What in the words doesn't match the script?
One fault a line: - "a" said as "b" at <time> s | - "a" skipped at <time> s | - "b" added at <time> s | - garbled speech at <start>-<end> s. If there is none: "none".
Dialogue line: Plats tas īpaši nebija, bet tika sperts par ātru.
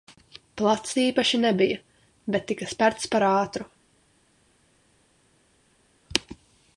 - "tas" skipped at 0.9 s